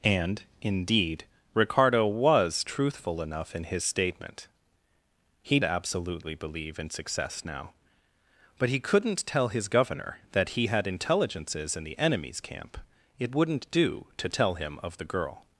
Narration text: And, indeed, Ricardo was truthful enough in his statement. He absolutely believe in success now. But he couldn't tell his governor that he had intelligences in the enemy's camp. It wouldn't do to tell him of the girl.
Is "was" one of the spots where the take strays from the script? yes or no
no